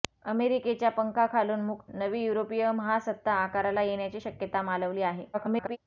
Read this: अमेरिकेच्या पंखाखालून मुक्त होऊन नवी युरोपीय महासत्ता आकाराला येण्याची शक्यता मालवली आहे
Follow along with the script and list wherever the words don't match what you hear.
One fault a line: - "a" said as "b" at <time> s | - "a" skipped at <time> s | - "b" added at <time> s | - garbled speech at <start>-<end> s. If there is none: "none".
- "होऊन" skipped at 1.9 s
- garbled speech at 5.3-5.8 s